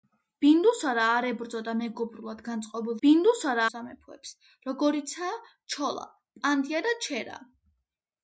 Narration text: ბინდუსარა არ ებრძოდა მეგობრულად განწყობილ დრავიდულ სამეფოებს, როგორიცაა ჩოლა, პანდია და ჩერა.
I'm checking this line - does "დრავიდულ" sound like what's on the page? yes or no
no